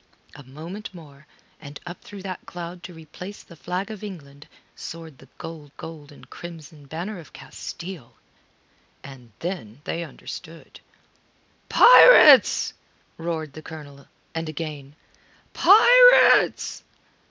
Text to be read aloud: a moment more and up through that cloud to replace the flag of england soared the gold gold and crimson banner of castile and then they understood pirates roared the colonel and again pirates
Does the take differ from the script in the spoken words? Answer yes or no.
no